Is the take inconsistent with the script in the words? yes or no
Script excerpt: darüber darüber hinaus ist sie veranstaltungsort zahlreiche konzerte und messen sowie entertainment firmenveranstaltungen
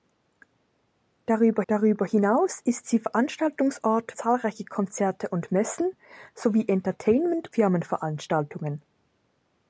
no